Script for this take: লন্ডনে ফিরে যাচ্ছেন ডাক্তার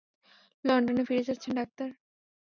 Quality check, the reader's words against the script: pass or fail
pass